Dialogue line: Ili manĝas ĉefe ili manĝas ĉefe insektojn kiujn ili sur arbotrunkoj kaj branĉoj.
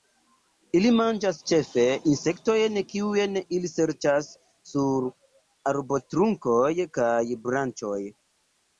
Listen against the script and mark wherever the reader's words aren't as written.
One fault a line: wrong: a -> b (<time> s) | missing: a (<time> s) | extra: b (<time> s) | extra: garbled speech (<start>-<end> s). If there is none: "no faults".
missing: ili manĝas ĉefe (1.8 s)
extra: serĉas (3.8 s)